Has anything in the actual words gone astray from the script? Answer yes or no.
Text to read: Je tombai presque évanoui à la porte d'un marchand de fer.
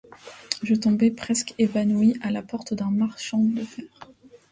no